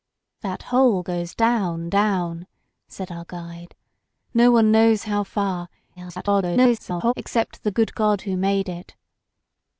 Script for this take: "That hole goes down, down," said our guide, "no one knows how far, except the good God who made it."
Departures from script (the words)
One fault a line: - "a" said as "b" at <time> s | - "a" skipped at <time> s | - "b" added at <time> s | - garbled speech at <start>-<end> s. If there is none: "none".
- garbled speech at 6.0-7.1 s